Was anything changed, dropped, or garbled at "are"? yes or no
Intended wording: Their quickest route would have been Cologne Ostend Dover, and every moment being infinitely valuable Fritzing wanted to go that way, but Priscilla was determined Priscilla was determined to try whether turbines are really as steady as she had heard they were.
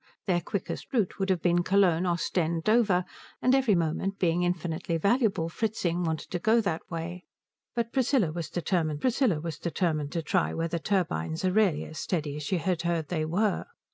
no